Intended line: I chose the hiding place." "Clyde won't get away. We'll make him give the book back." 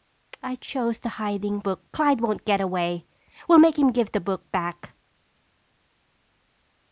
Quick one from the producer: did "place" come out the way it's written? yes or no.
no